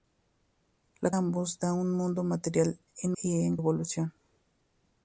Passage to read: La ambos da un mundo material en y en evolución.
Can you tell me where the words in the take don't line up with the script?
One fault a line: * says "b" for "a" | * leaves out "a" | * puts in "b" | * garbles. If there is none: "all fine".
all fine